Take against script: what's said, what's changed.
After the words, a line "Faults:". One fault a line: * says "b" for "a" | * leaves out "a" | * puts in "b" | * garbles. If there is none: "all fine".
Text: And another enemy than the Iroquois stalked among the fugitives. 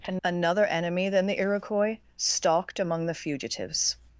And another enemy than the Iroquois stalked among the fugitives.
Faults:
all fine